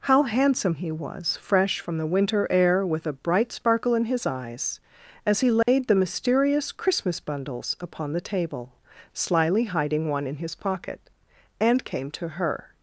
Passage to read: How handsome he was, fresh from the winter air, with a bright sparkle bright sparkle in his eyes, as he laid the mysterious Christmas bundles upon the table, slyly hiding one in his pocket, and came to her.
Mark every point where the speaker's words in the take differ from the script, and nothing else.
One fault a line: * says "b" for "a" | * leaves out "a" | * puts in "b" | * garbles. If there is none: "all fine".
* leaves out "bright sparkle"